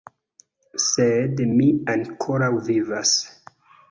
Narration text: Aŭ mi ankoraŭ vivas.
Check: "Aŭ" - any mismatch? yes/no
yes